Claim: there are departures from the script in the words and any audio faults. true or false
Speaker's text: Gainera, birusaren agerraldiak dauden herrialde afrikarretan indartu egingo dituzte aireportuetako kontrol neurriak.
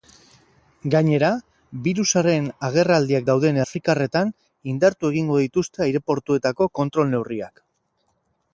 true